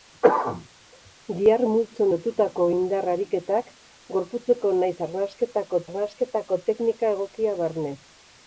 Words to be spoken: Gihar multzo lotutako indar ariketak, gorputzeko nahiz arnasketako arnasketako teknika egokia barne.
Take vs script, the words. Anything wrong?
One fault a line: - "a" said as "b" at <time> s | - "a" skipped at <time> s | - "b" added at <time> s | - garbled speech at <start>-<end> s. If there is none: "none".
none